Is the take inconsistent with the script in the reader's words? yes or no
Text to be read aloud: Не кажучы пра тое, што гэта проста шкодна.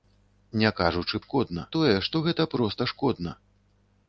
yes